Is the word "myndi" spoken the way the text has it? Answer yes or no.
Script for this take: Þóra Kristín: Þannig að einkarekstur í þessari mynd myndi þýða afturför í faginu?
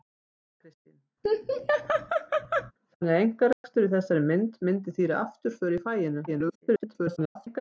yes